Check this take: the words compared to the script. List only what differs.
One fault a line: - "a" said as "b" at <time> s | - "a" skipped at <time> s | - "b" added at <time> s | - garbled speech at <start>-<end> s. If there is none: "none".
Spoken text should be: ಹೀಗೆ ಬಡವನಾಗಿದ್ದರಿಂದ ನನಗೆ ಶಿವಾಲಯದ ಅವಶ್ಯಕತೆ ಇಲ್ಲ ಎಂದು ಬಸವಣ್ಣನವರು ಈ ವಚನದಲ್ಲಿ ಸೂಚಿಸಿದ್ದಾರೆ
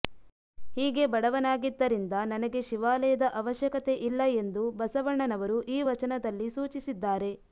none